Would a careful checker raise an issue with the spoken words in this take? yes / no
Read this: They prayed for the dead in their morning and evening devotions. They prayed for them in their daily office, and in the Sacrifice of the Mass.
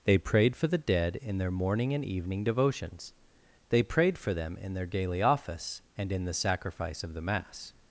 no